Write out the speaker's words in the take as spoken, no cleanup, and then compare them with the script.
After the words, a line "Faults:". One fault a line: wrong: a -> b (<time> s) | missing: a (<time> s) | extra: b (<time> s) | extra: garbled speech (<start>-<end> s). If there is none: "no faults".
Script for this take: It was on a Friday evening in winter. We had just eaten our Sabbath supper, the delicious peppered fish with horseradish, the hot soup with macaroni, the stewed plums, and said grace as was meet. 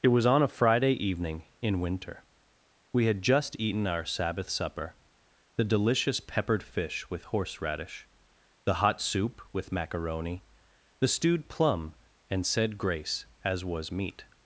It was on a Friday evening in winter. We had just eaten our Sabbath supper, the delicious peppered fish with horseradish, the hot soup with macaroni, the stewed plum, and said grace as was meet.
Faults:
wrong: plums -> plum (11.5 s)